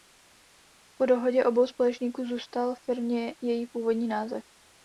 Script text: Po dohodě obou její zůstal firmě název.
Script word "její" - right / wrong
wrong